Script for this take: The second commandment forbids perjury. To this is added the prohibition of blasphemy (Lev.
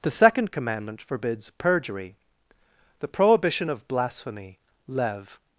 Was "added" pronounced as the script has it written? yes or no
no